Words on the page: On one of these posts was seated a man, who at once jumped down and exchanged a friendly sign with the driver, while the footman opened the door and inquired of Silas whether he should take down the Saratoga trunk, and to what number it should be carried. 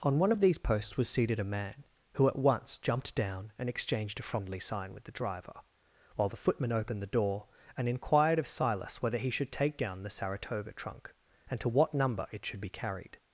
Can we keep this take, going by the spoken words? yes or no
yes